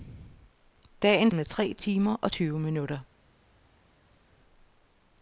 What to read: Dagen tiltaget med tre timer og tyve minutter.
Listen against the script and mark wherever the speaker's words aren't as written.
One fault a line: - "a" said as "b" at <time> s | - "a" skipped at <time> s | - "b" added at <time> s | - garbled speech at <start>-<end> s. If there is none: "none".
- "tiltaget" skipped at 1.3 s